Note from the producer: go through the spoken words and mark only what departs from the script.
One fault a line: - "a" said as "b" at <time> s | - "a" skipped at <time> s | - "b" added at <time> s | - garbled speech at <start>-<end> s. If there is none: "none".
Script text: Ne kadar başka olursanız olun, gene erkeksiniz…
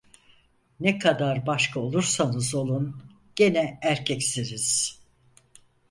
none